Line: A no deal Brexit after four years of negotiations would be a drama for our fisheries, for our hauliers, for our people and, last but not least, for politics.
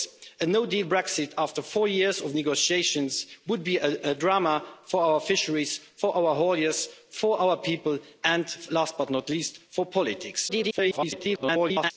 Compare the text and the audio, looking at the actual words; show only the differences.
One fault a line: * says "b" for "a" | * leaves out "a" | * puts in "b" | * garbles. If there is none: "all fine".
* garbles